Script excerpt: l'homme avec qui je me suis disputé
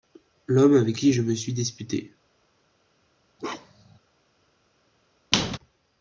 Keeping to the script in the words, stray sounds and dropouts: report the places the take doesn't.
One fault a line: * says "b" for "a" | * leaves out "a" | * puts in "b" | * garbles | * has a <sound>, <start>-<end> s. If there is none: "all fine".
* has a bark, 3.4-4.0 s
* has a squeak, 5.3-5.6 s